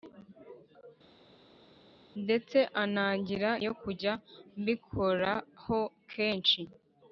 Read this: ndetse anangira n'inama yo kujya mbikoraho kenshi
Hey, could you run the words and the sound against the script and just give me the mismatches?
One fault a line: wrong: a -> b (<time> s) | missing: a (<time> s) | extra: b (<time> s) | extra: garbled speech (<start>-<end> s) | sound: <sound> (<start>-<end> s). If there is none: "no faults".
missing: n'inama (3.5 s)